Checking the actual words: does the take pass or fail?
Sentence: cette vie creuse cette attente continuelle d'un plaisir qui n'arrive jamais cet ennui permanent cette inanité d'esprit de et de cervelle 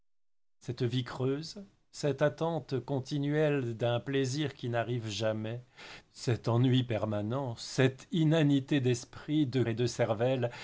pass